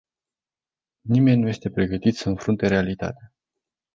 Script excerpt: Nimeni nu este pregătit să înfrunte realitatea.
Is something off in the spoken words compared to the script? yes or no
no